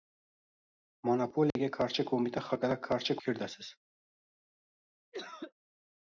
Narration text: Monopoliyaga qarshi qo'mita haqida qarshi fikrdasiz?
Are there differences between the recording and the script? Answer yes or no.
no